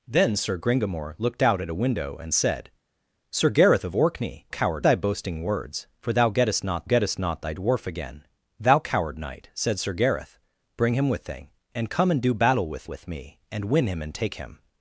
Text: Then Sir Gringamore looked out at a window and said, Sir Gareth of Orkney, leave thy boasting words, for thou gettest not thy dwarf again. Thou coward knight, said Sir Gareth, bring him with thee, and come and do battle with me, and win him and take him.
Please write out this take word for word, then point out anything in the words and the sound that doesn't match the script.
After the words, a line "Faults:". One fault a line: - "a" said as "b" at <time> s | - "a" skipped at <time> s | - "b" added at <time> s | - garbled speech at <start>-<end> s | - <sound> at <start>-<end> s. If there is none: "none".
Then Sir Gringamore looked out at a window and said, Sir Gareth of Orkney, coward thy boasting words, for thou gettest not gettest not thy dwarf again. Thou coward knight, said Sir Gareth, bring him with thee, and come and do battle with with me, and win him and take him.
Faults:
- "leave" said as "coward" at 4.5 s
- "gettest not" added at 6.8 s
- "with" added at 12.9 s